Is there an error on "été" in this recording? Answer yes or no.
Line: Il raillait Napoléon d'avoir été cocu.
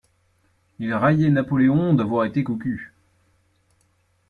no